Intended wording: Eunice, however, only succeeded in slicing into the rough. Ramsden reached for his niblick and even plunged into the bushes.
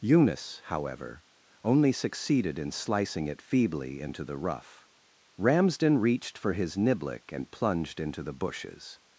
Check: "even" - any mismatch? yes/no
yes